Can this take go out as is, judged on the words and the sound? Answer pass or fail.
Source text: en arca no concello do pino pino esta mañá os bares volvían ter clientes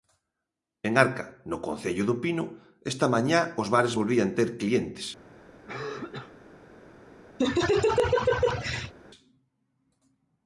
fail